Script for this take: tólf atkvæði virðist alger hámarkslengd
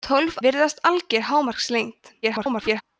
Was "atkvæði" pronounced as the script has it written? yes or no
no